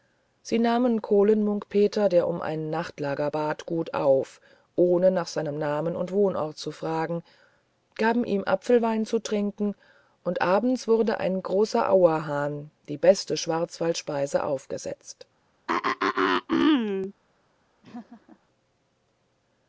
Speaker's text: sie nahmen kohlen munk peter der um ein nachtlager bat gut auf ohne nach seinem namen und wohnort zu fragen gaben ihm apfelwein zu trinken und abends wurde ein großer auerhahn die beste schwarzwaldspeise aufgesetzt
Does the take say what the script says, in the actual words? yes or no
yes